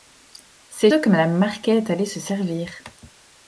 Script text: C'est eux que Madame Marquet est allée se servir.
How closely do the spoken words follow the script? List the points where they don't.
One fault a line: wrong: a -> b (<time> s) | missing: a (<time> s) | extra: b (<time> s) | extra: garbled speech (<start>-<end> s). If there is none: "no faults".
no faults